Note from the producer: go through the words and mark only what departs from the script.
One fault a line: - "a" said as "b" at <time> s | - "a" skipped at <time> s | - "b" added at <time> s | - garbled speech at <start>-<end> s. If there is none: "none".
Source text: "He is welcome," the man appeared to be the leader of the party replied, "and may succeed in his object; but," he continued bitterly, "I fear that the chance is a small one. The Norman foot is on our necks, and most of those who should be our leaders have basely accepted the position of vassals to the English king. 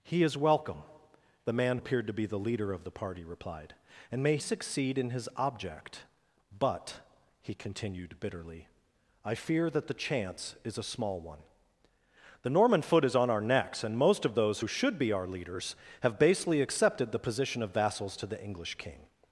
none